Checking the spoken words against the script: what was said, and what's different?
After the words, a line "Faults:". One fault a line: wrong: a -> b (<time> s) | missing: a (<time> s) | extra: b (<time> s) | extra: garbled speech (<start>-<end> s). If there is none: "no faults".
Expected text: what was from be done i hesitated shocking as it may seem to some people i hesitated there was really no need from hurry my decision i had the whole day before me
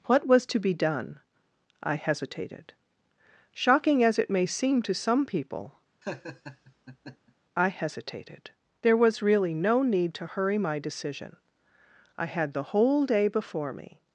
what was to be done i hesitated shocking as it may seem to some people i hesitated there was really no need to hurry my decision i had the whole day before me
Faults:
wrong: from -> to (0.5 s)
wrong: from -> to (10.1 s)